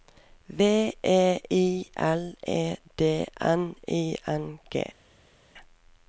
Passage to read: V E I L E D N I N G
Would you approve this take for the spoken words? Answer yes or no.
yes